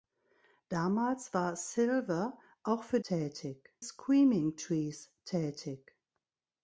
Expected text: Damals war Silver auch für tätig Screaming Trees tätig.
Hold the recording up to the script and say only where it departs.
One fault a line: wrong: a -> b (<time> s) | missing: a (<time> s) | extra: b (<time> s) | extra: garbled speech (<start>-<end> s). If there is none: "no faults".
no faults